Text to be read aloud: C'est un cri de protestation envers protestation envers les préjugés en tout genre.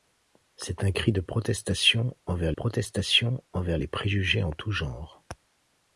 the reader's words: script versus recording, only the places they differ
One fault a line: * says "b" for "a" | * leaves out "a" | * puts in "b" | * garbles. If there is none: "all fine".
all fine